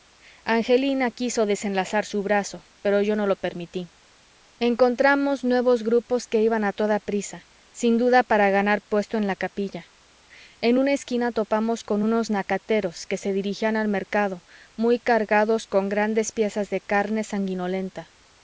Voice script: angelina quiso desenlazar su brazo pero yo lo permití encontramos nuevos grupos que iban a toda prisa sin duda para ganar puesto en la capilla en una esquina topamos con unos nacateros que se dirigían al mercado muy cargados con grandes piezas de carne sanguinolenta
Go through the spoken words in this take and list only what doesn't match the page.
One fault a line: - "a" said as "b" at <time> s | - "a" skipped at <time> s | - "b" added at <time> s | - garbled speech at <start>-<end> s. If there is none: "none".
- "no" added at 3.1 s